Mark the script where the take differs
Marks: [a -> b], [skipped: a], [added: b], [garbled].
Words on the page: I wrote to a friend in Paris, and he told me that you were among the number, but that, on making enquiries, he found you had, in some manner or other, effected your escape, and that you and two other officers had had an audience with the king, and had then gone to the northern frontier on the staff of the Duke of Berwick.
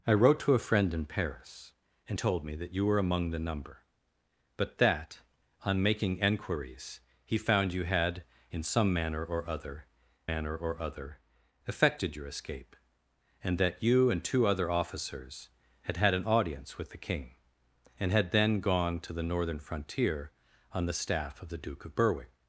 I wrote to a friend in Paris, and [skipped: he] told me that you were among the number, but that, on making enquiries, he found you had, in some manner or other, [added: manner or other] effected your escape, and that you and two other officers had had an audience with the king, and had then gone to the northern frontier on the staff of the Duke of Berwick.